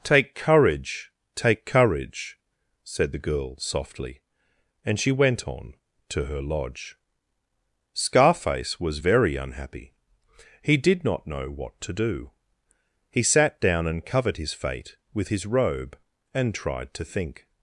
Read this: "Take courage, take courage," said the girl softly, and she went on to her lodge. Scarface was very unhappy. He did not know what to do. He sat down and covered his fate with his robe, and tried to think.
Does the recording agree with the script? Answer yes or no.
yes